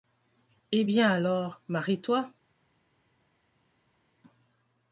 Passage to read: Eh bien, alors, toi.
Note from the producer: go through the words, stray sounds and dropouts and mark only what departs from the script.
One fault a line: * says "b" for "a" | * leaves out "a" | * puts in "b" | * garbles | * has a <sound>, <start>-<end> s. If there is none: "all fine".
* puts in "marie"